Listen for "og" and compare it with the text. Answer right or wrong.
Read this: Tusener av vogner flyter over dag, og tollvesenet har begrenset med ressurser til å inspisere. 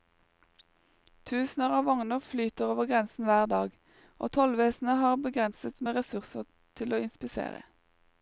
right